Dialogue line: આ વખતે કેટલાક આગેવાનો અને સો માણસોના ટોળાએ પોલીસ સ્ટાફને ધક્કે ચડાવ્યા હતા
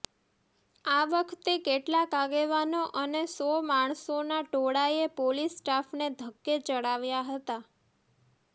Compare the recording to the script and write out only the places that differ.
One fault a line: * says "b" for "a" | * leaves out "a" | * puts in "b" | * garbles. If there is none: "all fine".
all fine